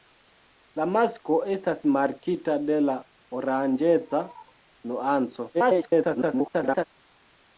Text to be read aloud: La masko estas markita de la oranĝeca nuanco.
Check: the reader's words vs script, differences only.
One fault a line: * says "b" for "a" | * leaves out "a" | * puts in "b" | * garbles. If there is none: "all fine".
* garbles